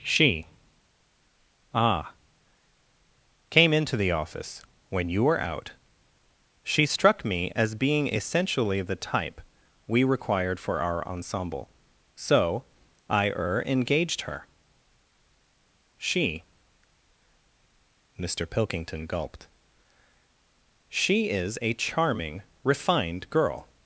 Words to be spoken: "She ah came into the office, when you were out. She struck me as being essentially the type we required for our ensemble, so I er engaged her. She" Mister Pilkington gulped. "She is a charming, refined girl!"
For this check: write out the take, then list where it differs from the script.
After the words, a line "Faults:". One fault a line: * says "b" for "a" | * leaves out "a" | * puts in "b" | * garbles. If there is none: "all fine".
"She ah came into the office, when you were out. She struck me as being essentially the type we required for our ensemble, so I er engaged her. She" Mister Pilkington gulped. "She is a charming, refined girl!"
Faults:
all fine